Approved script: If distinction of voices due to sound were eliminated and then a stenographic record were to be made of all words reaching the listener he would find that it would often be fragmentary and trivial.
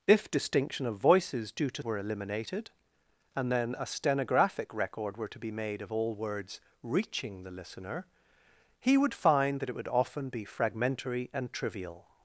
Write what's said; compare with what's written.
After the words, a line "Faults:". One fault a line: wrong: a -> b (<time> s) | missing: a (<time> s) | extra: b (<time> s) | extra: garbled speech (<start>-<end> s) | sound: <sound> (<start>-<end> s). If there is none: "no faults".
If distinction of voices due to were eliminated and then a stenographic record were to be made of all words reaching the listener he would find that it would often be fragmentary and trivial.
Faults:
missing: sound (1.8 s)